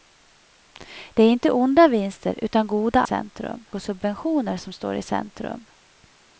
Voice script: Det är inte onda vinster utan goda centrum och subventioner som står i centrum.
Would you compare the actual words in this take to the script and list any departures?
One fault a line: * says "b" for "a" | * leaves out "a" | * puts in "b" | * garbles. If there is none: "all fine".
all fine